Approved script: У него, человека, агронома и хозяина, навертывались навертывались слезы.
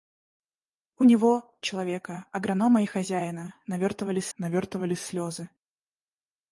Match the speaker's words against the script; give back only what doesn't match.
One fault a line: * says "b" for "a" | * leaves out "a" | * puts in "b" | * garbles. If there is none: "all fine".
all fine